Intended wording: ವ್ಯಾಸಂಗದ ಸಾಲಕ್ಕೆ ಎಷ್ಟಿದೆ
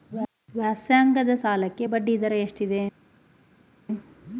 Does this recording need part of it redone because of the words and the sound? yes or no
yes